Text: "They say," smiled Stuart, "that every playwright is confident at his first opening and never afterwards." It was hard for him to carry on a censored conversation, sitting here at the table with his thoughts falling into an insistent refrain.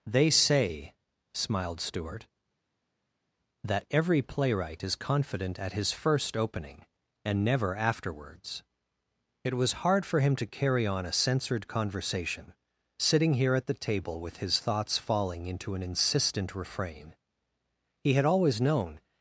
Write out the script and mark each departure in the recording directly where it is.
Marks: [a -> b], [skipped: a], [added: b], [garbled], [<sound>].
"They say," smiled Stuart, "that every playwright is confident at his first opening and never afterwards." It was hard for him to carry on a censored conversation, sitting here at the table with his thoughts falling into an insistent refrain. [added: He had always known]